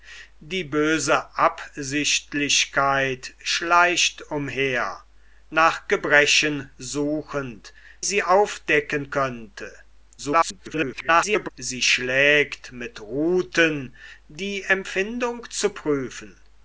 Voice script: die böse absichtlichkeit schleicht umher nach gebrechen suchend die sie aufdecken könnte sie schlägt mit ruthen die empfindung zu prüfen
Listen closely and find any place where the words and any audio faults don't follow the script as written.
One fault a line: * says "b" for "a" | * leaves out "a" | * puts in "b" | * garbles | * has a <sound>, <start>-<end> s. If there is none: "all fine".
* leaves out "die"
* garbles